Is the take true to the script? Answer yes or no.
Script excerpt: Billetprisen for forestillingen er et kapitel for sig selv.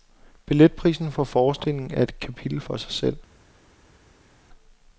yes